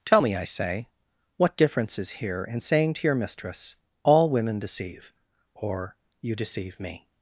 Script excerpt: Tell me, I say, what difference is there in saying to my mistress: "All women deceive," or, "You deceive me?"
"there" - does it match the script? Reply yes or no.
no